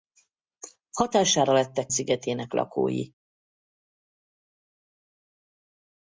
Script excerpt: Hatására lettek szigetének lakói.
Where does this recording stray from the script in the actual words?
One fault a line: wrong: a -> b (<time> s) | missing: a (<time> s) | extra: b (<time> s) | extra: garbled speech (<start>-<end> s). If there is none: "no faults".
no faults